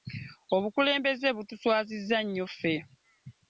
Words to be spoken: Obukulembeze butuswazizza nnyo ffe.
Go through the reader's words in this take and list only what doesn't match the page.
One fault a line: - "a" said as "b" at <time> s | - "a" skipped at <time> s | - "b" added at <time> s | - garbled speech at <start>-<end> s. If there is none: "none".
none